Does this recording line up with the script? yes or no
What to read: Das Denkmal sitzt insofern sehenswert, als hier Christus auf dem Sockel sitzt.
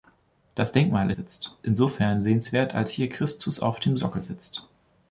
yes